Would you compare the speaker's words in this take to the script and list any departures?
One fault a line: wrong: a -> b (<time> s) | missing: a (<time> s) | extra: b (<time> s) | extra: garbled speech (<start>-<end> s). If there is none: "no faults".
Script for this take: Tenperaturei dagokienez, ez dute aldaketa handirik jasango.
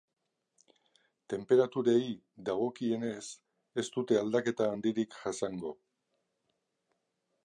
no faults